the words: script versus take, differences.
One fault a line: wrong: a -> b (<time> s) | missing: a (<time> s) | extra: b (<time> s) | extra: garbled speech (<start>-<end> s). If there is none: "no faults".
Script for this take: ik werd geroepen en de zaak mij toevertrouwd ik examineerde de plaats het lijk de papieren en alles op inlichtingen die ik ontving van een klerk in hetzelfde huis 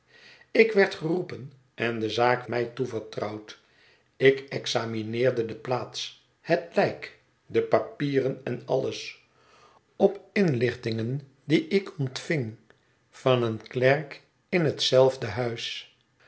no faults